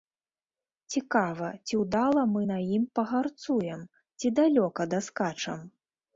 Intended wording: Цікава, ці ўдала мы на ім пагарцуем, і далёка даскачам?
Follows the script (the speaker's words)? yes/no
no